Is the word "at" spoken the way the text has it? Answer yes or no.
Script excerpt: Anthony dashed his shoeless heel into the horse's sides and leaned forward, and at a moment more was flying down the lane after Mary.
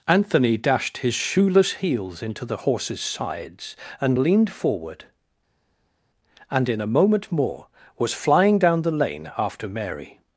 no